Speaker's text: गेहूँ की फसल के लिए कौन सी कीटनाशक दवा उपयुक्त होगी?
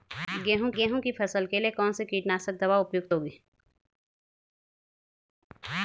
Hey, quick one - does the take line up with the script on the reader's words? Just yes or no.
no